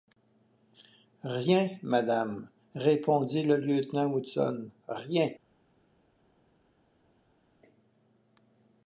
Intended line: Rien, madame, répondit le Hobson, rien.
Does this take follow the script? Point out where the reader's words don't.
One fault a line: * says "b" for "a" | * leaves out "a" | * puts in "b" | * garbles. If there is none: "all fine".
* puts in "lieutenant"